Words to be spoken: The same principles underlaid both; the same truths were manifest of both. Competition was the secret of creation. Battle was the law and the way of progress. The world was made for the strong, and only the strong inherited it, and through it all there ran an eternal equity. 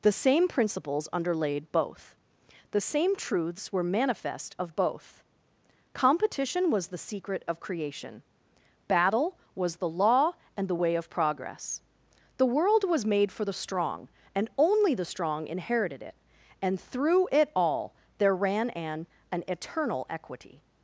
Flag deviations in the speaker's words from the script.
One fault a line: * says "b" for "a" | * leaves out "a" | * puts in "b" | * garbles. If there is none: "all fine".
* puts in "an"